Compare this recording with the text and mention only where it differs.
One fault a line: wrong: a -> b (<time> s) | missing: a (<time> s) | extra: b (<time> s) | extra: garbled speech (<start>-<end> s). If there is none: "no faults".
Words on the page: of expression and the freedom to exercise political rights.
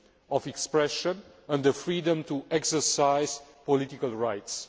no faults